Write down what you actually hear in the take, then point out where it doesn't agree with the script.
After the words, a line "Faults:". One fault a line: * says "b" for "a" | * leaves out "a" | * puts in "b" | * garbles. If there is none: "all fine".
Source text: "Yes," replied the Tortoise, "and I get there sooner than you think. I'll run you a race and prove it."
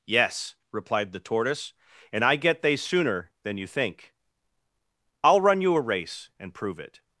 "Yes," replied the Tortoise, "and I get they sooner than you think. I'll run you a race and prove it."
Faults:
* says "they" for "there"